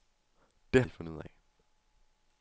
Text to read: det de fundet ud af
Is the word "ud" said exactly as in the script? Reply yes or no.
yes